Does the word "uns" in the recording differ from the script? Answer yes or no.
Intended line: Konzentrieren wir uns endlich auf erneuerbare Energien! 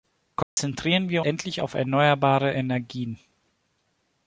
yes